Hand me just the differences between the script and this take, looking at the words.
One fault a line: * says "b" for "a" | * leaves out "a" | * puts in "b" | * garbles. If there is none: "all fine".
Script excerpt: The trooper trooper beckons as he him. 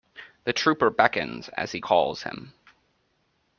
* leaves out "trooper"
* puts in "calls"